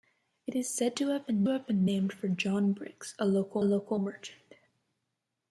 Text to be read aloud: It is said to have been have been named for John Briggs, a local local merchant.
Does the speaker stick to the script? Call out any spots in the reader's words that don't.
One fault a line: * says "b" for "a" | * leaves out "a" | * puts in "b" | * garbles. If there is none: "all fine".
all fine